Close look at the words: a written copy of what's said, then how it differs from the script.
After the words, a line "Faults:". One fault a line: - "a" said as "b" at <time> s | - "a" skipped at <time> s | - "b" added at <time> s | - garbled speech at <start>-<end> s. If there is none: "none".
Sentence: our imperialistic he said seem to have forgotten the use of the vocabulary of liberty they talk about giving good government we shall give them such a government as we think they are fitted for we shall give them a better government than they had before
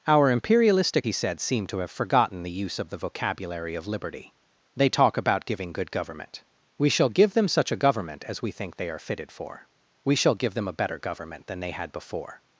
our imperialistic he said seem to have forgotten the use of the vocabulary of liberty they talk about giving good government we shall give them such a government as we think they are fitted for we shall give them a better government than they had before
Faults:
none